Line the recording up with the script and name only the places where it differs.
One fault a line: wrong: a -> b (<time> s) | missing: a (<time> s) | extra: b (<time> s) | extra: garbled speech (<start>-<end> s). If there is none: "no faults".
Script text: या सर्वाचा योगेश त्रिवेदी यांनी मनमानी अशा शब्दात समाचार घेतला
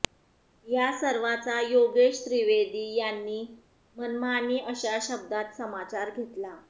no faults